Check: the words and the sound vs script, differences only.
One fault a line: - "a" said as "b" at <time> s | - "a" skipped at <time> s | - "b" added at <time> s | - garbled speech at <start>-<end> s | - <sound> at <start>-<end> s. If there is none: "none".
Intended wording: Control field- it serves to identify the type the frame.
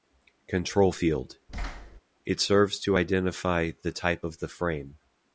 - thud at 1.5-2.0 s
- "of" added at 4.2 s